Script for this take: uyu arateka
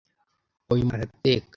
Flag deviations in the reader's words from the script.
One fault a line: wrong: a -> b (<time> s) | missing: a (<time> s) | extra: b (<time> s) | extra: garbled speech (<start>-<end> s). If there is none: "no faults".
no faults